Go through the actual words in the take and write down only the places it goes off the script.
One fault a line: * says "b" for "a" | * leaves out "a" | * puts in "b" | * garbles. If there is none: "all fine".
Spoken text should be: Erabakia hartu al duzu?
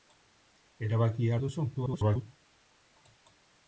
* leaves out "hartu"
* garbles